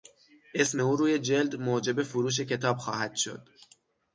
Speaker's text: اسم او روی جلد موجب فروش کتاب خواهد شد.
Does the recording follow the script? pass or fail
pass